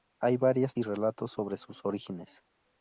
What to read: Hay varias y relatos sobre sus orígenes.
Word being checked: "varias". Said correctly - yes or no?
yes